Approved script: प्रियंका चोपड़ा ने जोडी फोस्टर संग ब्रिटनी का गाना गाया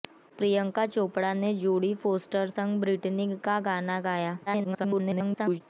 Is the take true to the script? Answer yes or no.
no